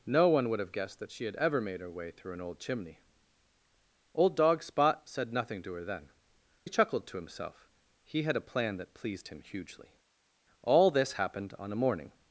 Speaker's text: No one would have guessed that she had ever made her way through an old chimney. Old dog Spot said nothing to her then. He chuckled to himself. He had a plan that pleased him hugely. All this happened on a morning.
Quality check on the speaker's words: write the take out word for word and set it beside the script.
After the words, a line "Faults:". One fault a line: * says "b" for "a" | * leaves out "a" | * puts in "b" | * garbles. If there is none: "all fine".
No one would have guessed that she had ever made her way through an old chimney. Old dog Spot said nothing to her then. He chuckled to himself. He had a plan that pleased him hugely. All this happened on a morning.
Faults:
all fine